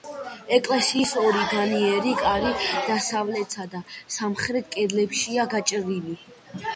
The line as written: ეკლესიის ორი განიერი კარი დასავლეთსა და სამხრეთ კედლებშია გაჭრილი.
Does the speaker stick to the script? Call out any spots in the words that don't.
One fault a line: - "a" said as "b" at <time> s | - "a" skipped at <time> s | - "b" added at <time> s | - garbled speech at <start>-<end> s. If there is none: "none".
none